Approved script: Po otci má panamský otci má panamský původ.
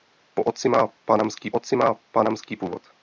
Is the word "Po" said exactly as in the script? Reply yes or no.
yes